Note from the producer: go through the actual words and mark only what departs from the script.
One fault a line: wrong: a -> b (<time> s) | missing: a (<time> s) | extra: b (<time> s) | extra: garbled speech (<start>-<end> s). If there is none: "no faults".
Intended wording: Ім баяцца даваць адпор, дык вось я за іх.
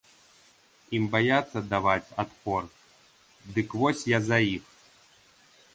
no faults